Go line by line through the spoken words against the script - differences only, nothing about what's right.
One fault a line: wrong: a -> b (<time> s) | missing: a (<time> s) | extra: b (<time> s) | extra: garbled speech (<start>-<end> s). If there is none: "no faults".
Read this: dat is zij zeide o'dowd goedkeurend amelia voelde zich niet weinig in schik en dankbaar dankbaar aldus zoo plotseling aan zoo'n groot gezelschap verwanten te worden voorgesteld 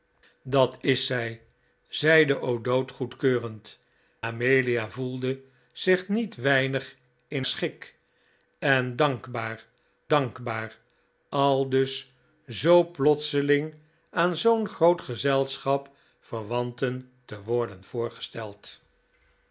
no faults